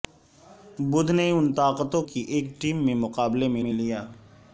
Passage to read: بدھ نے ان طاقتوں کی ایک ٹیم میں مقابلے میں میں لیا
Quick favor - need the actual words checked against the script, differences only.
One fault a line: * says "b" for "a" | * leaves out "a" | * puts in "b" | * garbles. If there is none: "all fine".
all fine